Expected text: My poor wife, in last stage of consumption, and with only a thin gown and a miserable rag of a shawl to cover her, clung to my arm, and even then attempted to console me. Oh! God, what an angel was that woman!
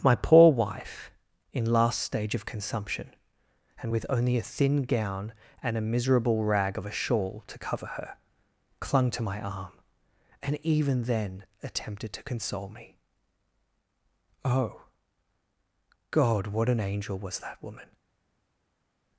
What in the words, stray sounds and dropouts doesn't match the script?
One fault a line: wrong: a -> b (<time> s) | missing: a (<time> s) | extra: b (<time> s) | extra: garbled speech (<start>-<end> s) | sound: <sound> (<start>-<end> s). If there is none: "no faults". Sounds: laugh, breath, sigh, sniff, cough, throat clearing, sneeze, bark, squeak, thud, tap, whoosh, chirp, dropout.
no faults